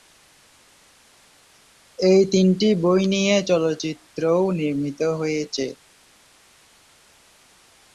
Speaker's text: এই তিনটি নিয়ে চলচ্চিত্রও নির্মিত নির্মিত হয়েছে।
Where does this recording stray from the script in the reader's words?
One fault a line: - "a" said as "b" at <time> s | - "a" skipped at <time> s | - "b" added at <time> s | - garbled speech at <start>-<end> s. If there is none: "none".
- "বই" added at 2.8 s
- "নির্মিত" skipped at 5.0 s